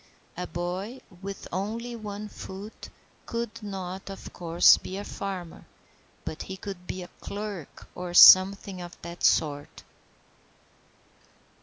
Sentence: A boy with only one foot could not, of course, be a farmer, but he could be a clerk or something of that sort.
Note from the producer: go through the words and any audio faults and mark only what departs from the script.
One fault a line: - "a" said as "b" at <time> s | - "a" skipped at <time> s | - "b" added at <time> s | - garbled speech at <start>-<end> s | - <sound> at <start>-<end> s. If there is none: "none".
none